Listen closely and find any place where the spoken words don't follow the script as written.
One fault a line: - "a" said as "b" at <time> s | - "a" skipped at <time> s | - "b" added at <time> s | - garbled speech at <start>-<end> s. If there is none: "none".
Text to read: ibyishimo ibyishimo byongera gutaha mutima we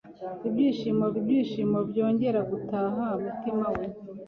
none